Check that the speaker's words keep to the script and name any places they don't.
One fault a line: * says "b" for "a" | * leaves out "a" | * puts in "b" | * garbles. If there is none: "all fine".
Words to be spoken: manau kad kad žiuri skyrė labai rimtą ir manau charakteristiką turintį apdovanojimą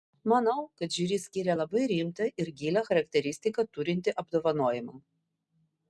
* leaves out "kad"
* says "gilią" for "manau"